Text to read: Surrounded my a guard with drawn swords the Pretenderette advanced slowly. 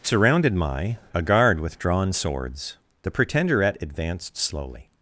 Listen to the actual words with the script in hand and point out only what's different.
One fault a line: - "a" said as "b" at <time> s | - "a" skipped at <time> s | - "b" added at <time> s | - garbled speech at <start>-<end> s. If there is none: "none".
none